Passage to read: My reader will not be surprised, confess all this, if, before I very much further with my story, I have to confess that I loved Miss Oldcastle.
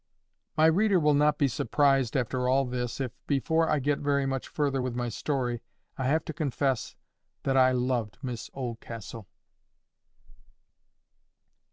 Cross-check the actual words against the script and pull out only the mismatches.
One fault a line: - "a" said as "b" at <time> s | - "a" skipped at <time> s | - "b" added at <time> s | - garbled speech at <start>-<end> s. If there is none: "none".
- "confess" said as "after" at 2.2 s
- "get" added at 3.8 s